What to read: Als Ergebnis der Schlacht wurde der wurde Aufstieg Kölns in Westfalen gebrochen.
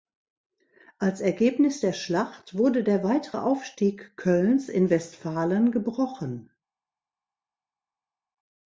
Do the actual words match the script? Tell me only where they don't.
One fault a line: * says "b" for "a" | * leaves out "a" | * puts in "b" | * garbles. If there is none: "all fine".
* says "weitere" for "wurde"